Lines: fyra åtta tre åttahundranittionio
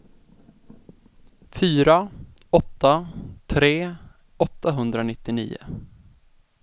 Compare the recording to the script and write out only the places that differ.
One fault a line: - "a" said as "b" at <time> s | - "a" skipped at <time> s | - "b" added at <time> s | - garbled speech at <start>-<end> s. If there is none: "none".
none